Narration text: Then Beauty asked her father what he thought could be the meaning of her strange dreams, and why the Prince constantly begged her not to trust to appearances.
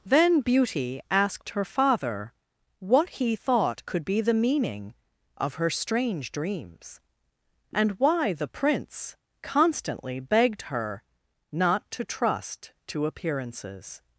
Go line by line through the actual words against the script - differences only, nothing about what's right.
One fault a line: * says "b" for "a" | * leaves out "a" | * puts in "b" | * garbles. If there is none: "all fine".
all fine